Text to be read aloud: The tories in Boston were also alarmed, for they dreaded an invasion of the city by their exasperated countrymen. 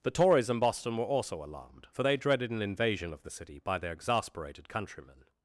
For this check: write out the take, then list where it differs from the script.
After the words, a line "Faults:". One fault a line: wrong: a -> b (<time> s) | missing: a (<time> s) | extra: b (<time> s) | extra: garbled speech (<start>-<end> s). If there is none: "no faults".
The tories in Boston were also alarmed, for they dreaded an invasion of the city by their exasperated countrymen.
Faults:
no faults